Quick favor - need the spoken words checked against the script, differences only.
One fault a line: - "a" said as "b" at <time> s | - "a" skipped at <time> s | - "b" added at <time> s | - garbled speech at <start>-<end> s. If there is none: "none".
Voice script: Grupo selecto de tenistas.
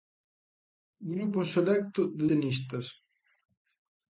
none